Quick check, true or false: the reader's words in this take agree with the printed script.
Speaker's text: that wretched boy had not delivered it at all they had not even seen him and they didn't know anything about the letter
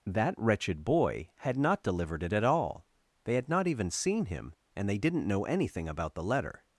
true